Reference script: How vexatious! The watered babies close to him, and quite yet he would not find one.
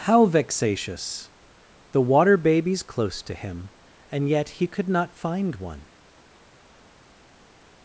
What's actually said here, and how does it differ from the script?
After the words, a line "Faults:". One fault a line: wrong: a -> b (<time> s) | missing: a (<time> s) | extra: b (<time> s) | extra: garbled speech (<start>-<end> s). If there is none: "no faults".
How vexatious! The water babies close to him, and yet he could not find one.
Faults:
wrong: watered -> water (2.0 s)
missing: quite (4.3 s)
wrong: would -> could (4.7 s)